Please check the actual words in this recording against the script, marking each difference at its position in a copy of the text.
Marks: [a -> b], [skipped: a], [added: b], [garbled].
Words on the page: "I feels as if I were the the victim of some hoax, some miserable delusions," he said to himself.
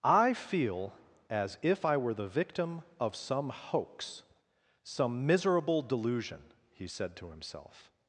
"I [feels -> feel] as if I were the [skipped: the] victim of some hoax, some miserable [delusions," -> delusion] he said to himself.